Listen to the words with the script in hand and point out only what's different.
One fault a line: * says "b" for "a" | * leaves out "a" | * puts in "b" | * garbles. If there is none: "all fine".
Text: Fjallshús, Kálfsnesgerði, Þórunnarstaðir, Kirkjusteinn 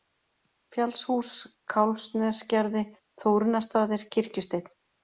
all fine